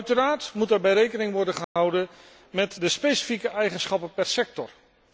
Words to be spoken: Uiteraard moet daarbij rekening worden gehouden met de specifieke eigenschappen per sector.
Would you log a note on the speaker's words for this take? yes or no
no